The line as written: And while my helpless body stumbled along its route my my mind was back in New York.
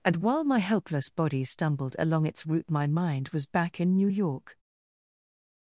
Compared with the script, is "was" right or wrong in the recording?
right